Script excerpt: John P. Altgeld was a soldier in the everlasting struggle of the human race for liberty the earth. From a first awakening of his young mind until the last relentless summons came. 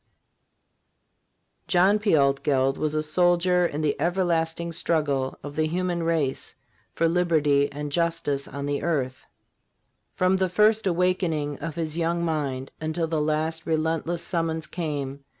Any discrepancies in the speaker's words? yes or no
yes